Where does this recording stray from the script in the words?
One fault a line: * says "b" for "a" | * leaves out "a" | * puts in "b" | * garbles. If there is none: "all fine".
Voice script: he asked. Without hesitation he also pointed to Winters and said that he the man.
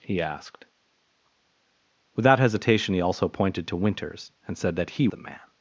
all fine